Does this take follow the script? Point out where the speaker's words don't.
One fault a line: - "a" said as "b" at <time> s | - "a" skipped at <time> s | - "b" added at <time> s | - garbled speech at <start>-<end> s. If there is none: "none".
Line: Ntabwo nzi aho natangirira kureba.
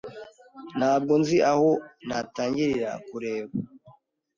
none